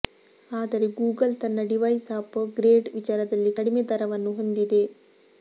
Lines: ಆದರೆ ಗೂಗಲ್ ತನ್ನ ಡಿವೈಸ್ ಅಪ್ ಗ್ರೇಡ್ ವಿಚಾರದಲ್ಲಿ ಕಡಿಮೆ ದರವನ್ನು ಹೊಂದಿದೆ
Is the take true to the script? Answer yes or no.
yes